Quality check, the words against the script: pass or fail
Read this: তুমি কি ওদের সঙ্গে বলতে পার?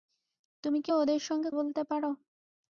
pass